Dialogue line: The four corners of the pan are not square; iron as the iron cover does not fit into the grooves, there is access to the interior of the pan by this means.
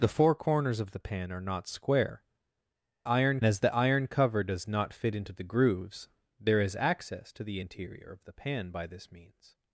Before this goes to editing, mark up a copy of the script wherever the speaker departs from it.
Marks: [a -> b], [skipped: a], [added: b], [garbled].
The four corners of the pan are not square; iron as the iron cover does not fit into the grooves, there is access to the interior of the pan by this means.